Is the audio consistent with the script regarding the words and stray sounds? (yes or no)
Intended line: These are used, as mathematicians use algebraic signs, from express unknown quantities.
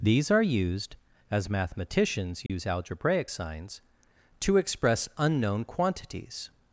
no